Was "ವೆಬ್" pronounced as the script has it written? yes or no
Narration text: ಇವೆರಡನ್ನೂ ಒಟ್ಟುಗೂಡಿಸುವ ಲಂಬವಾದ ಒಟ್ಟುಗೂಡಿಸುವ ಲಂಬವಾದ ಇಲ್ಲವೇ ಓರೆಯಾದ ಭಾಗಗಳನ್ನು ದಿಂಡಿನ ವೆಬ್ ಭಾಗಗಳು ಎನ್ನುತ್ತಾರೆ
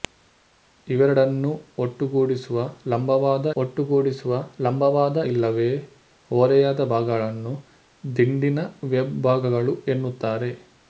yes